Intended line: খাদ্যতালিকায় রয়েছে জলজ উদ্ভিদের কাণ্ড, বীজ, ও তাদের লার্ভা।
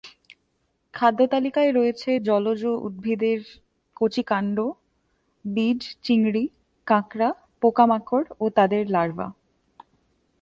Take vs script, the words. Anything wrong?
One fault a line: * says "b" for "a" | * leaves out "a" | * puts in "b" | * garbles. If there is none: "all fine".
* puts in "কচি"
* puts in "চিংড়ি কাঁকড়া পোকামাকড়"